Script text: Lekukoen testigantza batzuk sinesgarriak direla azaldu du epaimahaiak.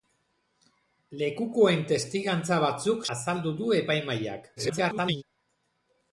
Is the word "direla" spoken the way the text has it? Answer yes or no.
no